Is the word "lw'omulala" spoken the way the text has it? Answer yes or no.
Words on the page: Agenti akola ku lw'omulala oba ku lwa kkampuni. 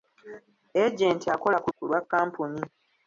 no